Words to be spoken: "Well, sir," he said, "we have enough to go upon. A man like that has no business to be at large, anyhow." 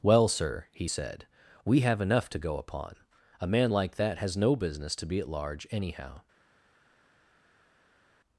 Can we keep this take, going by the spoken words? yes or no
yes